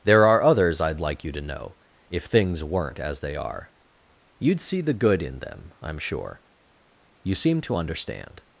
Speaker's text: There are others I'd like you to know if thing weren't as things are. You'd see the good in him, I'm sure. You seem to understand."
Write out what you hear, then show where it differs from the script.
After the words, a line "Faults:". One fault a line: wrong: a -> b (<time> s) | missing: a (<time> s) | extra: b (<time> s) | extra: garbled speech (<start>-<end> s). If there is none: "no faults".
There are others I'd like you to know if things weren't as they are. You'd see the good in them, I'm sure. You seem to understand."
Faults:
wrong: thing -> things (2.2 s)
wrong: things -> they (3.2 s)
wrong: him -> them (5.4 s)